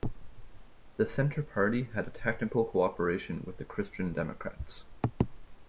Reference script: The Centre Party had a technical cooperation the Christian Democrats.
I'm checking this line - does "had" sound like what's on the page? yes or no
yes